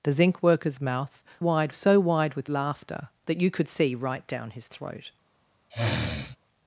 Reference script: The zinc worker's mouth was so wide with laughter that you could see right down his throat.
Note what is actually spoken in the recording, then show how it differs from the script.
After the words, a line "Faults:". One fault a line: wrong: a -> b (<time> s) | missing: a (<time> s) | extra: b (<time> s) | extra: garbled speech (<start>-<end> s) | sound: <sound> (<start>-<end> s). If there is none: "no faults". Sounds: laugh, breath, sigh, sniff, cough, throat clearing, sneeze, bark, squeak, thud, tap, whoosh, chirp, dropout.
The zinc worker's mouth wide so wide with laughter that you could see right down his throat.
Faults:
wrong: was -> wide (1.4 s)
sound: sniff (5.7-6.4 s)